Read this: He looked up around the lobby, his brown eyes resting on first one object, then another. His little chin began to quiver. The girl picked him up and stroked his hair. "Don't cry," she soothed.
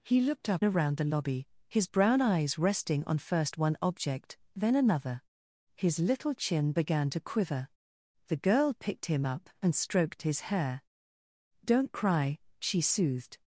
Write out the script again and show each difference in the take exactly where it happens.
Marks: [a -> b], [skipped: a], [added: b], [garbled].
He looked up around the lobby, his brown eyes resting on first one object, then another. His little chin began to quiver. The girl picked him up and stroked his hair. "Don't cry," she soothed.